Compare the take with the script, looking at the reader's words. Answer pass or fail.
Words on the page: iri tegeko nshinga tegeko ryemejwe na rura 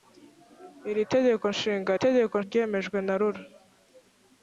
pass